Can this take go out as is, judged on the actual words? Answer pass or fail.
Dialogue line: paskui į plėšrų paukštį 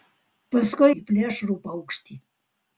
pass